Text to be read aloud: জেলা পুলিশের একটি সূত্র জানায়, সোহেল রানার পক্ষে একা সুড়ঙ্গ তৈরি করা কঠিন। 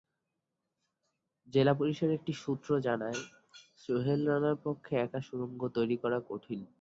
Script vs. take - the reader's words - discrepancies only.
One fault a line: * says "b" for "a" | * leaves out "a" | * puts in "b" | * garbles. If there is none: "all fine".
all fine